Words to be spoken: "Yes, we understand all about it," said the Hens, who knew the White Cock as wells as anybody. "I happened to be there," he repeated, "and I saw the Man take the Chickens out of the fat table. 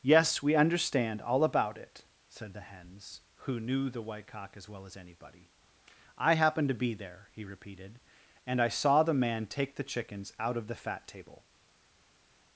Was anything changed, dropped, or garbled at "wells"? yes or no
yes